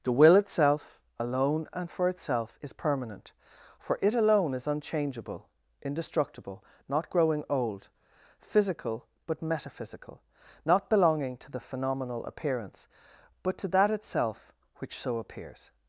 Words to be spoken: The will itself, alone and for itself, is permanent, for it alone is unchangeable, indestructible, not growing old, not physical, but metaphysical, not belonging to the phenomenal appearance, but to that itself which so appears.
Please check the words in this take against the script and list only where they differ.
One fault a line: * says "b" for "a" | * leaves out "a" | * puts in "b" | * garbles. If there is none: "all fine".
* leaves out "not"